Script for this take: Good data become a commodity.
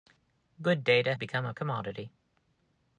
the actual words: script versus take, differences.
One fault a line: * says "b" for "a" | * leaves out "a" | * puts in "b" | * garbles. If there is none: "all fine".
all fine